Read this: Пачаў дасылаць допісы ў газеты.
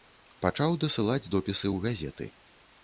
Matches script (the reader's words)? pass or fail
pass